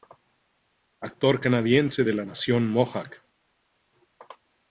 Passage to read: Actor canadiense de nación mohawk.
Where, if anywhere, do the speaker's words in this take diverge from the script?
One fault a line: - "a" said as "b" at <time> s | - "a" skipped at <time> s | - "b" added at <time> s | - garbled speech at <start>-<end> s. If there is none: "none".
- "la" added at 2.1 s